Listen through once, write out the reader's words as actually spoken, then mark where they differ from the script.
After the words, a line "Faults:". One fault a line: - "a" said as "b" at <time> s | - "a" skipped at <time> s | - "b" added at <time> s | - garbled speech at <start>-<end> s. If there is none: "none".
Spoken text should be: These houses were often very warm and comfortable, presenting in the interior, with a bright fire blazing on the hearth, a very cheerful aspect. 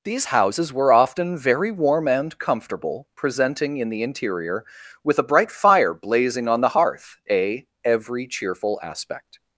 These houses were often very warm and comfortable, presenting in the interior, with a bright fire blazing on the hearth, a every cheerful aspect.
Faults:
- "very" said as "every" at 7.8 s